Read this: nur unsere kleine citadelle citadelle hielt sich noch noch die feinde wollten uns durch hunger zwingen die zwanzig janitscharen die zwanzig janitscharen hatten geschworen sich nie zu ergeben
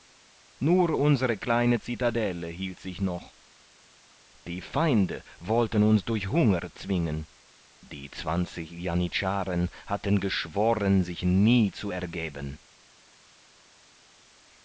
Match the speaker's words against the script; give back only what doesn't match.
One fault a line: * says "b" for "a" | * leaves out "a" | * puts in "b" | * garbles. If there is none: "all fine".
* leaves out "citadelle"
* leaves out "noch"
* leaves out "die zwanzig janitscharen"